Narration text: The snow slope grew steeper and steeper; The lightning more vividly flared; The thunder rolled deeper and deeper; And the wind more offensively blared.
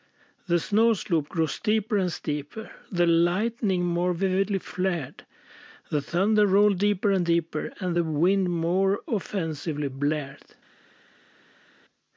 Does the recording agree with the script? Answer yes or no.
yes